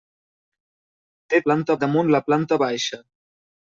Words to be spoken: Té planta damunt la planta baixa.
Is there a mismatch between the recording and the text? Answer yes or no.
no